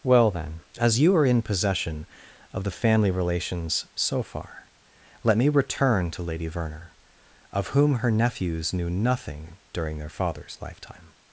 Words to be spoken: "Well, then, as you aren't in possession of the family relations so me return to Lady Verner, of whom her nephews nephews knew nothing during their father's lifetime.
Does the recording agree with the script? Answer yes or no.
no